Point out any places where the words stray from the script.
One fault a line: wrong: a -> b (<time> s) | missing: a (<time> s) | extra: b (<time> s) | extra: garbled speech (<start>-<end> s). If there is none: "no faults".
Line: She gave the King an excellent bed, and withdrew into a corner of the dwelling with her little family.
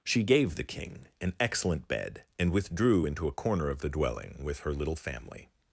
no faults